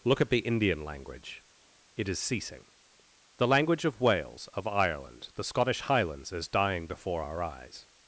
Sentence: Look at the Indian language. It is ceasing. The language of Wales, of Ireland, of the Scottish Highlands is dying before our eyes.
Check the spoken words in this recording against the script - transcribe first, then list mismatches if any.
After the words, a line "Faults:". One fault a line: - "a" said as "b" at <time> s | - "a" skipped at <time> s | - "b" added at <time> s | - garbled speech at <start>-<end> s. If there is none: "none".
Look at the Indian language. It is ceasing. The language of Wales, of Ireland, the Scottish Highlands is dying before our eyes.
Faults:
- "of" skipped at 5.3 s